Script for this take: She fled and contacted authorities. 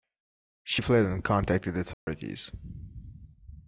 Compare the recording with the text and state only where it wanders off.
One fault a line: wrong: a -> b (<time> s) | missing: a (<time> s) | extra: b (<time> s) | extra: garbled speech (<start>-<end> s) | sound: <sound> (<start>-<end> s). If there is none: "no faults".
sound: dropout (1.9-2.1 s)